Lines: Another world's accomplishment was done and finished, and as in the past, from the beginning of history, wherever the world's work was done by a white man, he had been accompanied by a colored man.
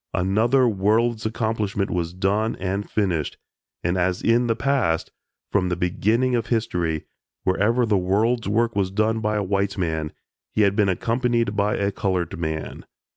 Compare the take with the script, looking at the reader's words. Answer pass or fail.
pass